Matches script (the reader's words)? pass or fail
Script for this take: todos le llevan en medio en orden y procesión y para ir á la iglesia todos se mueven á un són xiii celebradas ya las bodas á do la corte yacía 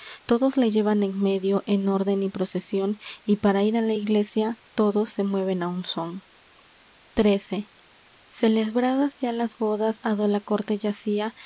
pass